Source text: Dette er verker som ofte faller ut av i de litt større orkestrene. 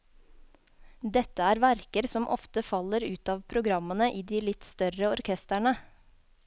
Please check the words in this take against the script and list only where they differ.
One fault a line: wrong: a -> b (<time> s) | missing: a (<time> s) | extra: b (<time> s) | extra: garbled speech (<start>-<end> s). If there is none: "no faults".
extra: programmene (3.5 s)